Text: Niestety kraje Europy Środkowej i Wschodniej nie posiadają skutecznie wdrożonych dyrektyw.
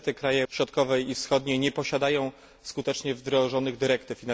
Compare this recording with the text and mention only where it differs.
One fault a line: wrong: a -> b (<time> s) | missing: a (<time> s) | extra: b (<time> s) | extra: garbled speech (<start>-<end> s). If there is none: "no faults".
missing: Europy (0.4 s)